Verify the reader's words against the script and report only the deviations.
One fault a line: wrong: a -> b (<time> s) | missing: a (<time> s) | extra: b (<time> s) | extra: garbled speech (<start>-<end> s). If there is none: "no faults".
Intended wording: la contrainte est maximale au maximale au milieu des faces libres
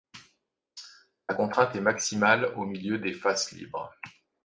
missing: maximale au (2.7 s)